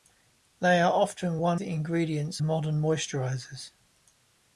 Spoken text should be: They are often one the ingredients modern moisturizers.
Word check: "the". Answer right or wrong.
right